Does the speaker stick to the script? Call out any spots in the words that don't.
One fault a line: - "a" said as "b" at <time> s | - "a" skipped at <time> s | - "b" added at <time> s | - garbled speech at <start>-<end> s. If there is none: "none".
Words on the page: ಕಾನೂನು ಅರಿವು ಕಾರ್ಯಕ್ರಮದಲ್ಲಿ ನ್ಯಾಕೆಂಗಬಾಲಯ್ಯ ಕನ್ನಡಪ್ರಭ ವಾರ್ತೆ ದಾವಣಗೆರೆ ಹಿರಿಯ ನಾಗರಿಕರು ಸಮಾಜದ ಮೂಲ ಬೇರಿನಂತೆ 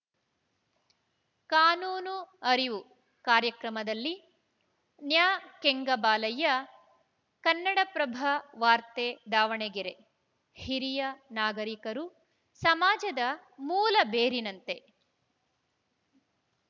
none